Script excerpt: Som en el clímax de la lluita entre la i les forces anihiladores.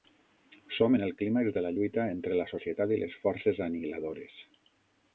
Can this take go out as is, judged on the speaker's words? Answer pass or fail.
fail